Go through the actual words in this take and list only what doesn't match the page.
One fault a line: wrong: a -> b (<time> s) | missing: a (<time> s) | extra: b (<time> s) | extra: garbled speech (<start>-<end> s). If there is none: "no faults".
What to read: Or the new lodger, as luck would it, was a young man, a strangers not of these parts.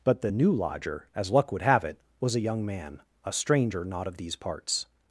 wrong: Or -> But (0.0 s)
extra: have (1.6 s)
wrong: strangers -> stranger (3.3 s)